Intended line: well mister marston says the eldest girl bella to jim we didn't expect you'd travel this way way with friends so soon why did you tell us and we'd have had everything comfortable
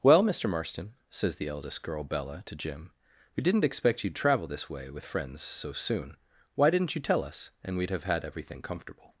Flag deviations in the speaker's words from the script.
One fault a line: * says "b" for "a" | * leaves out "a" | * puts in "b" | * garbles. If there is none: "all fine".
* leaves out "way"
* says "didn't" for "did"